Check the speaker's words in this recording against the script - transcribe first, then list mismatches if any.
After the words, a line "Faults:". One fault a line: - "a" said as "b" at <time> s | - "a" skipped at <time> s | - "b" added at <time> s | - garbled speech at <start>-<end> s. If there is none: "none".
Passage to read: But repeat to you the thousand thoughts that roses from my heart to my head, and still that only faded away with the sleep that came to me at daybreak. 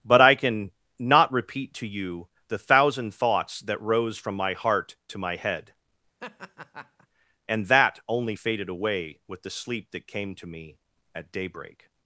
But I can not repeat to you the thousand thoughts that rose from my heart to my head, and that only faded away with the sleep that came to me at daybreak.
Faults:
- "I can not" added at 0.2 s
- "roses" said as "rose" at 3.8 s
- "still" skipped at 7.7 s